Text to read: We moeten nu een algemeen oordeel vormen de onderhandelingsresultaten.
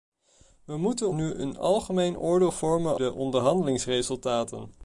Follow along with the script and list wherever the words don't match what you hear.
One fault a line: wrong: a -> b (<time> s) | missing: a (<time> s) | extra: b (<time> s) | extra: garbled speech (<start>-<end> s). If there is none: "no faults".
no faults